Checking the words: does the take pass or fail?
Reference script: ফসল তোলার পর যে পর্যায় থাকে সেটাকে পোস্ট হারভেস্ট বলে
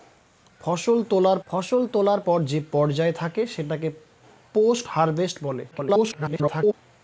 fail